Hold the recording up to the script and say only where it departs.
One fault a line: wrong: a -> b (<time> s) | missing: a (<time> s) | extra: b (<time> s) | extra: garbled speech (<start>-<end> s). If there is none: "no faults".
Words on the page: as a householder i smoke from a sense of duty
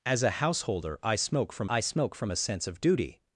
extra: i smoke from (1.7 s)